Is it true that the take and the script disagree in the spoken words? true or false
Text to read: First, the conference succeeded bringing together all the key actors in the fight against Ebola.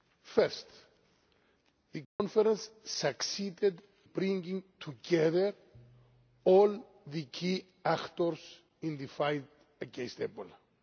false